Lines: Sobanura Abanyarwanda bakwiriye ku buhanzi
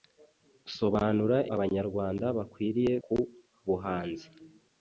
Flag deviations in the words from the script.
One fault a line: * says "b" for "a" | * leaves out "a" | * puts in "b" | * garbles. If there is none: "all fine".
all fine